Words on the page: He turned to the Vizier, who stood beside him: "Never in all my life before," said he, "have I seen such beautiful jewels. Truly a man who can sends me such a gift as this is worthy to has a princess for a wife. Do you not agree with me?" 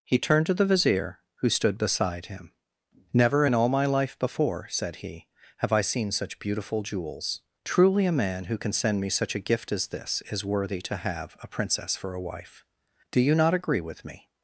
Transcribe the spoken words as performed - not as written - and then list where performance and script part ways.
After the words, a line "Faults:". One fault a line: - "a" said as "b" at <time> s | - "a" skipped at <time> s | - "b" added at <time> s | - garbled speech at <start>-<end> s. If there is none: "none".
He turned to the Vizier, who stood beside him: "Never in all my life before," said he, "have I seen such beautiful jewels. Truly a man who can send me such a gift as this is worthy to have a princess for a wife. Do you not agree with me?"
Faults:
- "sends" said as "send" at 8.7 s
- "has" said as "have" at 11.0 s